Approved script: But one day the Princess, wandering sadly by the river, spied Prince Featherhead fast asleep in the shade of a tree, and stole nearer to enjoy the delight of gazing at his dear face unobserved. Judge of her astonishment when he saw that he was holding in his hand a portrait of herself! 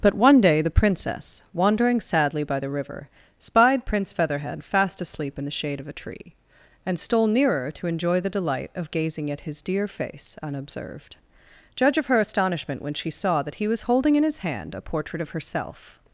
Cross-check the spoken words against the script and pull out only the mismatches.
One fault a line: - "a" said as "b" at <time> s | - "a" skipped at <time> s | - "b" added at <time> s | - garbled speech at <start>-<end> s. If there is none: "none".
- "he" said as "she" at 12.9 s